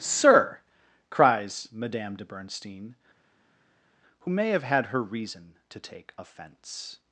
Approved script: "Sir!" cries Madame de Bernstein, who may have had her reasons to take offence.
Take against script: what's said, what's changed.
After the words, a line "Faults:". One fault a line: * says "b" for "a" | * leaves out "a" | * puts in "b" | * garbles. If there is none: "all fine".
"Sir!" cries Madame de Bernstein, who may have had her reason to take offence.
Faults:
* says "reason" for "reasons"